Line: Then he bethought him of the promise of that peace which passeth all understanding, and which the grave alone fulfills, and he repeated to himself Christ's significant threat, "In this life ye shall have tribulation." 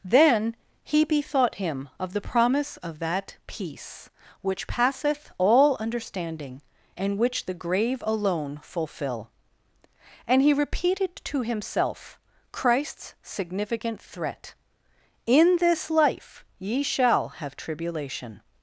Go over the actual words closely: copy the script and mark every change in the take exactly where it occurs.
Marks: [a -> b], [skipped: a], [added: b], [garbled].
Then he bethought him of the promise of that peace which passeth all understanding, and which the grave alone [fulfills, -> fulfill] and he repeated to himself Christ's significant threat, "In this life ye shall have tribulation."